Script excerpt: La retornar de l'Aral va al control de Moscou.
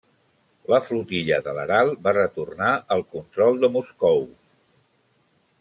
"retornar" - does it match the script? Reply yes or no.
no